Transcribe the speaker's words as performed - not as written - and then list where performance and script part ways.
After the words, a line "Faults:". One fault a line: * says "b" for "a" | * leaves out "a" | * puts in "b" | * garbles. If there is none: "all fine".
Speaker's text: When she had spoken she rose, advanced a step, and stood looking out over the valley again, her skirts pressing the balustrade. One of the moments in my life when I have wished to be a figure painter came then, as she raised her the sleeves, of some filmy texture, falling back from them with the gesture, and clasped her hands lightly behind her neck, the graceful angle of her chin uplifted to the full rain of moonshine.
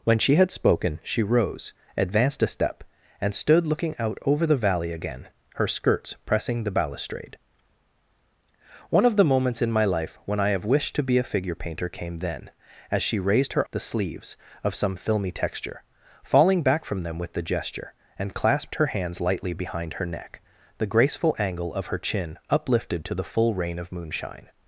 When she had spoken she rose, advanced a step, and stood looking out over the valley again, her skirts pressing the balustrade. One of the moments in my life when I have wished to be a figure painter came then, as she raised her the sleeves, of some filmy texture, falling back from them with the gesture, and clasped her hands lightly behind her neck, the graceful angle of her chin uplifted to the full rain of moonshine.
Faults:
all fine